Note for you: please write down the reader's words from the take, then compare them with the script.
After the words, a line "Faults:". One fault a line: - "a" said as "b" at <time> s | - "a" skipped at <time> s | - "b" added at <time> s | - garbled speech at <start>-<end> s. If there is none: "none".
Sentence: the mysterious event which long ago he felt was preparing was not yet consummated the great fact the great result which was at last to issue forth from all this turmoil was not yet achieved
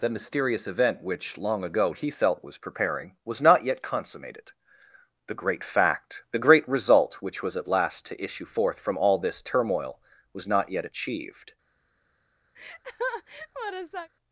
the mysterious event which long ago he felt was preparing was not yet consummated the great fact the great result which was at last to issue forth from all this turmoil was not yet achieved
Faults:
none